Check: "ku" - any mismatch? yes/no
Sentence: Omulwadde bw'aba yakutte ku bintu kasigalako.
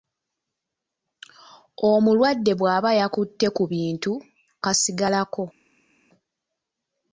no